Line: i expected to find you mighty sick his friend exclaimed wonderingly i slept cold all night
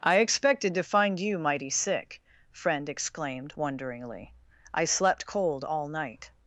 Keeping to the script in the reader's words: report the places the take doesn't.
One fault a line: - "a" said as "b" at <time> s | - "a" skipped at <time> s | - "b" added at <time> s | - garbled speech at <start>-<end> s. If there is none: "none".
- "his" skipped at 2.2 s